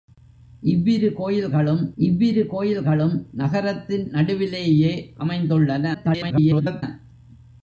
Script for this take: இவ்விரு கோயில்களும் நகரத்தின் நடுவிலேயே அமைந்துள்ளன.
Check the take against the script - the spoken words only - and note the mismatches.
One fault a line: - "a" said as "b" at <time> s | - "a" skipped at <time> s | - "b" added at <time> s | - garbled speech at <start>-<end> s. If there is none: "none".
- "இவ்விரு கோயில்களும்" added at 2.0 s
- garbled speech at 5.9-6.8 s